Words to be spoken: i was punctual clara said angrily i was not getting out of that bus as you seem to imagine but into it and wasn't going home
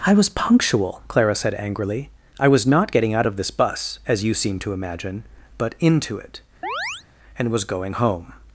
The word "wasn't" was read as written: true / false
false